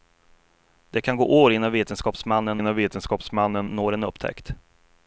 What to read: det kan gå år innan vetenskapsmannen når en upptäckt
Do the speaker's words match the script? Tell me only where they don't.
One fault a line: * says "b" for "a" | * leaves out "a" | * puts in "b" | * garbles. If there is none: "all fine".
* puts in "innan vetenskapsmannen"